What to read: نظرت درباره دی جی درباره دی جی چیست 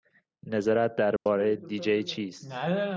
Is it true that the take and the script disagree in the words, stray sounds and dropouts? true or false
true